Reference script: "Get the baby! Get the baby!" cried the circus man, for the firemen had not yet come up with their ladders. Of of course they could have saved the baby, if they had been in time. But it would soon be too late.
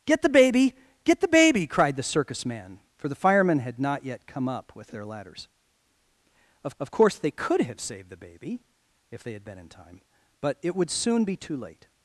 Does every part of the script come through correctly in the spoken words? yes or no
yes